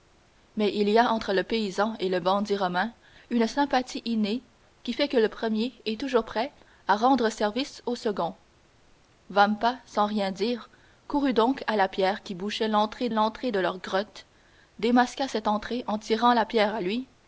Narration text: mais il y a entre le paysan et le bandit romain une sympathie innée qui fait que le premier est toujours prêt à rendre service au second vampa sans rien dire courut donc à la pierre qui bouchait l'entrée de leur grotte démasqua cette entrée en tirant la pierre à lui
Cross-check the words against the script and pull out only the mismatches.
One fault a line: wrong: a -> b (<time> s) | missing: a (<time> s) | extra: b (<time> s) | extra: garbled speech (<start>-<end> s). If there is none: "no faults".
extra: l'entrée (13.1 s)